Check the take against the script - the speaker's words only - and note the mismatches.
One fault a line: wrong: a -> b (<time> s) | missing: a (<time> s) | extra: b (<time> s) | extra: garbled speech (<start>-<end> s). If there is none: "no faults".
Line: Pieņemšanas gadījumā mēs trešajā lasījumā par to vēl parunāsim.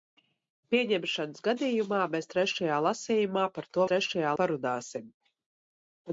wrong: vēl -> trešajā (3.9 s)